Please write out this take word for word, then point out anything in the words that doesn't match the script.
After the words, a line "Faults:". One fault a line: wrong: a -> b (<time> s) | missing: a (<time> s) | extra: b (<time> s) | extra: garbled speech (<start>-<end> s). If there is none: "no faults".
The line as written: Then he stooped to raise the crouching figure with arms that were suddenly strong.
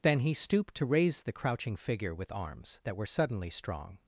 Then he stooped to raise the crouching figure with arms that were suddenly strong.
Faults:
no faults